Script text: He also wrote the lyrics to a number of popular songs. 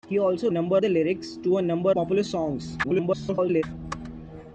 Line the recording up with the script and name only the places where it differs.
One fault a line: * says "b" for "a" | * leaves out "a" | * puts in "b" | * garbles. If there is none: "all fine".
* says "number" for "wrote"
* leaves out "of"
* garbles